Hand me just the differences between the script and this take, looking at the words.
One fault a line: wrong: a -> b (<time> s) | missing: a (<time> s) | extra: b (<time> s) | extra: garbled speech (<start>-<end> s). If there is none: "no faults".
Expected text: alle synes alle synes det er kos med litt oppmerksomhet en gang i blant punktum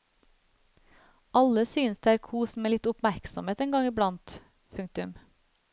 missing: alle synes (2.0 s)